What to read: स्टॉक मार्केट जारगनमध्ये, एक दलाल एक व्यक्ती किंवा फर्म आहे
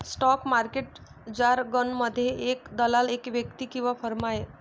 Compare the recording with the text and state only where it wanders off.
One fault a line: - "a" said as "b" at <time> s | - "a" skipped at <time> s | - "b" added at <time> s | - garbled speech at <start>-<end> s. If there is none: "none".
none